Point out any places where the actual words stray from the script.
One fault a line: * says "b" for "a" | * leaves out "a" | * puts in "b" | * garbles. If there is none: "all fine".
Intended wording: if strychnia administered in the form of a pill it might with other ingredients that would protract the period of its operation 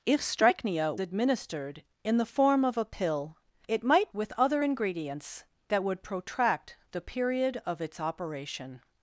all fine